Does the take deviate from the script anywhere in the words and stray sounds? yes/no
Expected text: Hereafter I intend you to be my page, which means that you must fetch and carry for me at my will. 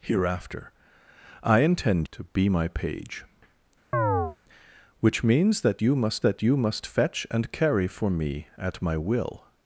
yes